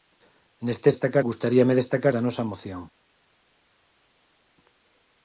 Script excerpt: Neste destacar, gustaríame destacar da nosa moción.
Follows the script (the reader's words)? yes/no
yes